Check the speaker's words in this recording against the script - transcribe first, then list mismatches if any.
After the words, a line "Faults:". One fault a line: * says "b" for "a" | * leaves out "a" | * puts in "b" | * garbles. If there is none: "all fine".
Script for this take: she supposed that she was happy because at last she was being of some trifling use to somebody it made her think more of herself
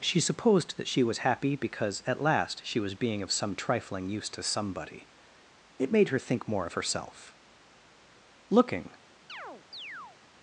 she supposed that she was happy because at last she was being of some trifling use to somebody it made her think more of herself looking
Faults:
* puts in "looking"